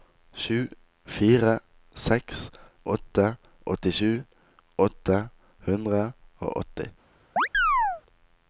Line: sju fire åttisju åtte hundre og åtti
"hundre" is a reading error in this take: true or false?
false